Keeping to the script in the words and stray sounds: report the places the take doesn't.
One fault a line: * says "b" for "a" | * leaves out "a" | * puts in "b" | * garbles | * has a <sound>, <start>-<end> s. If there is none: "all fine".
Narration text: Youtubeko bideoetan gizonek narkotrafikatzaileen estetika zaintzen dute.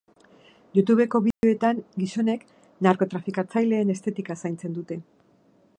* has a dropout, 1.3-1.4 s